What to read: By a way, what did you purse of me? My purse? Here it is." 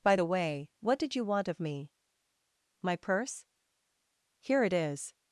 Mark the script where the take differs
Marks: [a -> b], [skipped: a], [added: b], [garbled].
By [a -> the] way, what did you [purse -> want] of me? My purse? Here it is."